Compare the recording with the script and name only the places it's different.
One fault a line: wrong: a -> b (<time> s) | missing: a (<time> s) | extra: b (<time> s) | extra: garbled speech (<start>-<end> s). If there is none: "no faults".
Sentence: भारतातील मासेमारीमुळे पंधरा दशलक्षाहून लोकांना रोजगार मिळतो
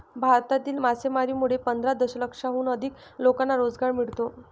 extra: अधिक (2.7 s)